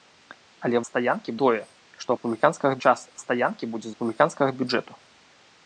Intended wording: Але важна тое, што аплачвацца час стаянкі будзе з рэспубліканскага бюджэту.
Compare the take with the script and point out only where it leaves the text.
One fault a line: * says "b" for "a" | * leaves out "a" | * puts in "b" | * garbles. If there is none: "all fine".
* says "стаянкі" for "важна"
* says "рэспубліканскага" for "аплачвацца"
* leaves out "з"